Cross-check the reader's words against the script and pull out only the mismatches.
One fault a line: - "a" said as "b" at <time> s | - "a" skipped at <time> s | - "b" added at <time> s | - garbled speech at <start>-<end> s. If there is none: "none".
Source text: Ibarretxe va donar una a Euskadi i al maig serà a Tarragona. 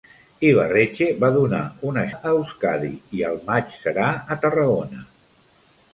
none